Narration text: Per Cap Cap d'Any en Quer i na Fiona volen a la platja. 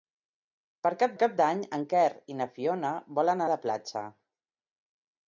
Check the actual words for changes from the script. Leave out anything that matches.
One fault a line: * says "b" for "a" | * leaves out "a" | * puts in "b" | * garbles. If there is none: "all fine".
all fine